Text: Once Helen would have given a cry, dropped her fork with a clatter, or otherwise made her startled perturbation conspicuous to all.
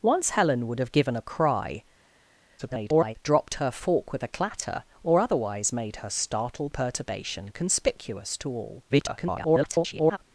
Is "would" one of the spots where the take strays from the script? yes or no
no